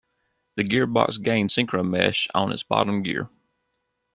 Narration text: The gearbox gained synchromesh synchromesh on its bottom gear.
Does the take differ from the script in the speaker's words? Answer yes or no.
yes